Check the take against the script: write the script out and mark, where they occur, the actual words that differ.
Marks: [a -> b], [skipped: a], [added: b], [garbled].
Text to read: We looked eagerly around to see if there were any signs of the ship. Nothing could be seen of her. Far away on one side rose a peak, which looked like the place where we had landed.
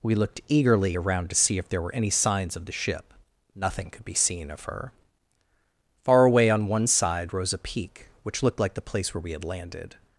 We looked eagerly around to see if there were any signs of the ship. Nothing could be seen of her. Far away on one side rose a peak, which looked like the place where we had landed.